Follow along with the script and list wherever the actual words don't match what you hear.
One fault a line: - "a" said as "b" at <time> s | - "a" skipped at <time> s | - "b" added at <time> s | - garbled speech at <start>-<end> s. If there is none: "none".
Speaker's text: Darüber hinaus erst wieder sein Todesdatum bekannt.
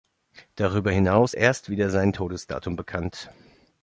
none